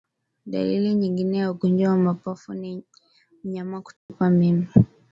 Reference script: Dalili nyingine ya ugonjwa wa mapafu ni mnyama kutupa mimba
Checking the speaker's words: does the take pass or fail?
pass